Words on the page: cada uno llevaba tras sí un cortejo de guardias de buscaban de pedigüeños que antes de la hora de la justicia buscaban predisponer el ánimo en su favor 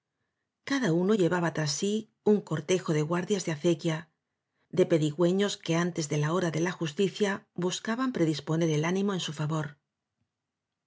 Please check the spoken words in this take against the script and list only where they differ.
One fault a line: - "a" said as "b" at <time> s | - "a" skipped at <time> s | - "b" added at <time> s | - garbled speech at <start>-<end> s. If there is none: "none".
- "buscaban" said as "acequia" at 3.5 s